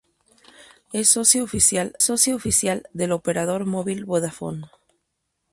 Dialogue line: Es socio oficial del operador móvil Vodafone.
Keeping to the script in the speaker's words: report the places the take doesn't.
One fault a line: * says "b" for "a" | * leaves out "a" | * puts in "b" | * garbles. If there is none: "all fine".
* puts in "socio oficial"